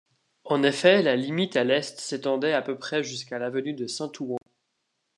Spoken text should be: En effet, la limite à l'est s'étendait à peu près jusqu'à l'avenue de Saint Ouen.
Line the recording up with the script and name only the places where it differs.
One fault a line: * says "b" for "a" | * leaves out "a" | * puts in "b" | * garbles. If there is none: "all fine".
all fine